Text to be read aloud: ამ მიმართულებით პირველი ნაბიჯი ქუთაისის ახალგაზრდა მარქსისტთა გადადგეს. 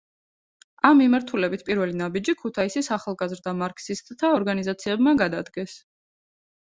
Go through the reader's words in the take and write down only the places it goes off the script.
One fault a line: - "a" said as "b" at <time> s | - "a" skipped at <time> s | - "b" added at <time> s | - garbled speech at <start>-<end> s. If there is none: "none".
- "ორგანიზაციებმა" added at 4.4 s